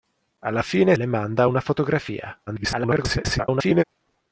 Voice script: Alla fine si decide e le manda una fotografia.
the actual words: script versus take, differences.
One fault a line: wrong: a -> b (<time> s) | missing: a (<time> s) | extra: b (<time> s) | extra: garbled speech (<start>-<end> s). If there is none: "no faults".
missing: si decide e (0.9 s)
extra: garbled speech (2.5-3.8 s)